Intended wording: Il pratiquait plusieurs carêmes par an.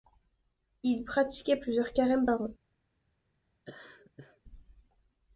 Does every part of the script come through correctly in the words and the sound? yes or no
no